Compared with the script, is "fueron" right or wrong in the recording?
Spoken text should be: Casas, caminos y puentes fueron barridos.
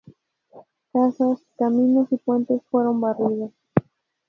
right